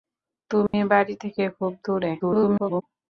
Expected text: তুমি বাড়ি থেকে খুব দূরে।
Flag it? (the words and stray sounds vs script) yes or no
yes